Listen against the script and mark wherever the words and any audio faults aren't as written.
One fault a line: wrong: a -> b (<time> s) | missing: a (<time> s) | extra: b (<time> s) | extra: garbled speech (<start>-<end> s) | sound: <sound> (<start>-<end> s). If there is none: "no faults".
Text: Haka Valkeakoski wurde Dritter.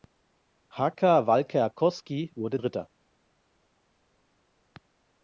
no faults